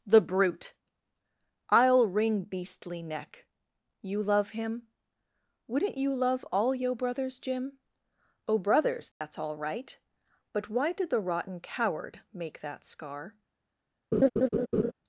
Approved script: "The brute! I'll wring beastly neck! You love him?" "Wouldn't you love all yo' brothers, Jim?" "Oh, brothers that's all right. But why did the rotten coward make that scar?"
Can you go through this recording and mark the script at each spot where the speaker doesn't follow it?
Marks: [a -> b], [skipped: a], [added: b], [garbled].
"The brute! I'll wring beastly neck! You love him?" "Wouldn't you love all yo' brothers, Jim?" "Oh, brothers that's all right. But why did the rotten coward make that scar?"